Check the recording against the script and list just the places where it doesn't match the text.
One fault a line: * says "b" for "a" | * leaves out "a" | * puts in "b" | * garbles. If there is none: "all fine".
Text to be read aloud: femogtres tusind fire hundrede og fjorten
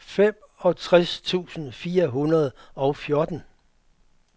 all fine